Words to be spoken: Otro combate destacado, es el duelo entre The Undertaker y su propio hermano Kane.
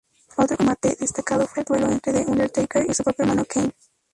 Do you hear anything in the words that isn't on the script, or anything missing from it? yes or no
yes